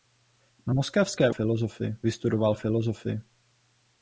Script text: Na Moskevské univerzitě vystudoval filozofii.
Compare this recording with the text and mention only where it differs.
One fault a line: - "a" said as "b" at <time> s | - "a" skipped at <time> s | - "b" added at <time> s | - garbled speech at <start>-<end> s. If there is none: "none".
- "univerzitě" said as "filozofii" at 1.3 s